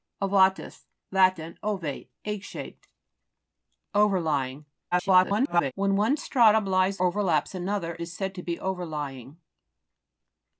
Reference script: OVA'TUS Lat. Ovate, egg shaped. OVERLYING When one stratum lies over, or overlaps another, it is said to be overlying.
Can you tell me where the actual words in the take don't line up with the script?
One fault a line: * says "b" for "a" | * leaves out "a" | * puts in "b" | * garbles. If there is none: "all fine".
* garbles
* leaves out "over or"
* leaves out "it"